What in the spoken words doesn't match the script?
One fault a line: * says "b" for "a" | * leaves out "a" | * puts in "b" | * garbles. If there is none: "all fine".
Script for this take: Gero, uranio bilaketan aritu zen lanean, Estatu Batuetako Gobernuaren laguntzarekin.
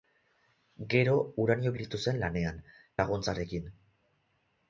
* leaves out "bilaketan"
* leaves out "Estatu Batuetako Gobernuaren"